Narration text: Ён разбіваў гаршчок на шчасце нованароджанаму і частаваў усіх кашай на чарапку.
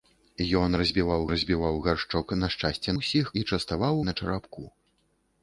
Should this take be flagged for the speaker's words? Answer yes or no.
yes